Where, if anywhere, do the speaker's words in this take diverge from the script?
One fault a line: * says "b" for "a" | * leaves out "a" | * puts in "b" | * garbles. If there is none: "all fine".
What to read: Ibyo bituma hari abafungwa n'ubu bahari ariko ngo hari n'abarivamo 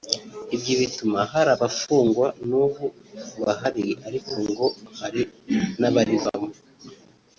all fine